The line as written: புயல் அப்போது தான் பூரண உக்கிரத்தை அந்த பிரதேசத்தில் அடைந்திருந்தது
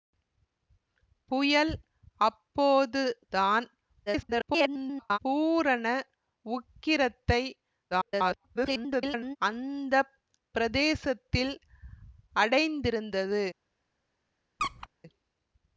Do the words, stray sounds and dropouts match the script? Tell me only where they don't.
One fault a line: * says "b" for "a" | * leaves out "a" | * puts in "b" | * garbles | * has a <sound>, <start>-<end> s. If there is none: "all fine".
* garbles
* garbles
* has a squeak, 14.6-14.9 s